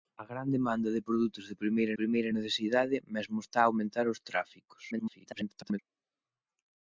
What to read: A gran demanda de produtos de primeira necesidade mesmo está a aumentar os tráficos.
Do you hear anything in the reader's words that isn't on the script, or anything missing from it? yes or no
yes